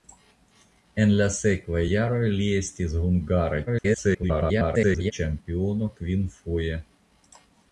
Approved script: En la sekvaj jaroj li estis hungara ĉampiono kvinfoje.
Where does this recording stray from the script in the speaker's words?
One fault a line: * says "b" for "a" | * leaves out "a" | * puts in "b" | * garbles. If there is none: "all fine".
* garbles